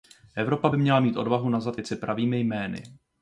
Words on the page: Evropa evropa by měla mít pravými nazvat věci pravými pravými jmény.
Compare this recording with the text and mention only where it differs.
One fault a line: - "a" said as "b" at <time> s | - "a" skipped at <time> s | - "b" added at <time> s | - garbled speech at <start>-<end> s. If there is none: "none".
- "evropa" skipped at 0.7 s
- "pravými" said as "odvahu" at 1.2 s
- "pravými" skipped at 2.4 s